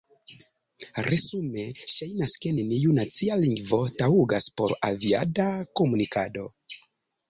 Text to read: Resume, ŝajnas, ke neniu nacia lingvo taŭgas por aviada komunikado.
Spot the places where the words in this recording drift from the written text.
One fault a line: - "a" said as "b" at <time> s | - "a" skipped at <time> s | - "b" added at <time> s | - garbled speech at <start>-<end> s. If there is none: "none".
none